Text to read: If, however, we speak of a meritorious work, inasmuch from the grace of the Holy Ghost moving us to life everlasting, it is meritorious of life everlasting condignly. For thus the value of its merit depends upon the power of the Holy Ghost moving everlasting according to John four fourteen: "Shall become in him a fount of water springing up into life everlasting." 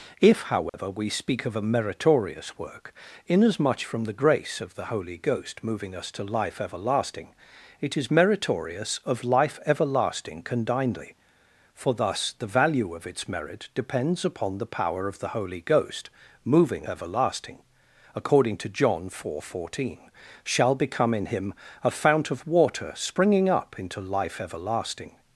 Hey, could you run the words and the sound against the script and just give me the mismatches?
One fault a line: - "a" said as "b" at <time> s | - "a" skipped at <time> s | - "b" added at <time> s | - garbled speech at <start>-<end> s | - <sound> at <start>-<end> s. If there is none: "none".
- dropout at 0.7-0.7 s